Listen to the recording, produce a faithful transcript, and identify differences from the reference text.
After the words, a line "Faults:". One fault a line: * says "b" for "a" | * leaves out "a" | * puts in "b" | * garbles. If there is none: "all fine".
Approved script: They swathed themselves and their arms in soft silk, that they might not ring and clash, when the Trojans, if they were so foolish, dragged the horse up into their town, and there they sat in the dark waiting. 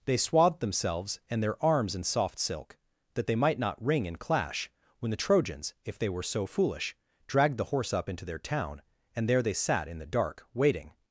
They swathed themselves and their arms in soft silk, that they might not ring and clash, when the Trojans, if they were so foolish, dragged the horse up into their town, and there they sat in the dark waiting.
Faults:
all fine